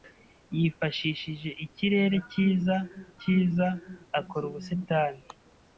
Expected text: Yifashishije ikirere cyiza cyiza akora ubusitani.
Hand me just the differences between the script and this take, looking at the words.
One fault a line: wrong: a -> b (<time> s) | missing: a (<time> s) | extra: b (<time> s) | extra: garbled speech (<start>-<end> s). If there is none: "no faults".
no faults